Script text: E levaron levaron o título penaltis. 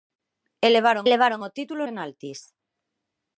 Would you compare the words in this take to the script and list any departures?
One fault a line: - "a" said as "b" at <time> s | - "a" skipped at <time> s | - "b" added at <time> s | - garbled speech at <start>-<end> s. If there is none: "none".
none